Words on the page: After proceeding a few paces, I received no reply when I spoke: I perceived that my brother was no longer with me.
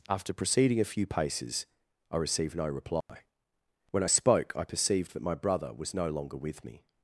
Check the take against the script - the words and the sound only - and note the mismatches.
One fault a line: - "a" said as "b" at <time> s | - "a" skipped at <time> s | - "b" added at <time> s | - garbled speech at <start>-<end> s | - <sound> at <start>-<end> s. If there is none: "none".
- dropout at 3.0-3.1 s